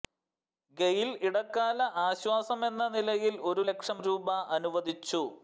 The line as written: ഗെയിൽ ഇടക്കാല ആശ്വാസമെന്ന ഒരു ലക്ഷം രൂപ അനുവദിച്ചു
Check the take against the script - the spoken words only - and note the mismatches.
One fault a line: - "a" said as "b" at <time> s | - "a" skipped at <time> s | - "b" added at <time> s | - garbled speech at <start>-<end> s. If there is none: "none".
- "നിലയിൽ" added at 2.9 s